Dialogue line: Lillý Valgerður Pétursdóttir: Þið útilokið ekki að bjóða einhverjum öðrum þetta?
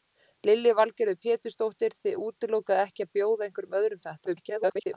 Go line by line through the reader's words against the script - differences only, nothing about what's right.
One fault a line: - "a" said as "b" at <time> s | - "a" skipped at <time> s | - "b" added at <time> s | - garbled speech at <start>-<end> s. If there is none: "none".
- garbled speech at 4.3-4.9 s